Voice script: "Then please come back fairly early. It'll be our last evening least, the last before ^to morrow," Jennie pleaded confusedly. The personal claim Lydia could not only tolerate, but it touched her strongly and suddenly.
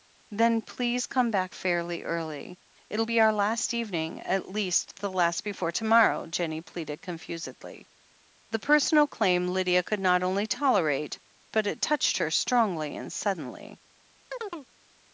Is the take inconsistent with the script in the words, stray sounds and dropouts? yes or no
yes